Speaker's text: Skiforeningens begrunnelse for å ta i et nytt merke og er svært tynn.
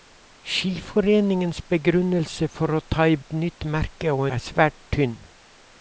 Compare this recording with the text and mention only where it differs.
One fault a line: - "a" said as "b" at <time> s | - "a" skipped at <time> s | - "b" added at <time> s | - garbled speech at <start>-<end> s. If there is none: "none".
none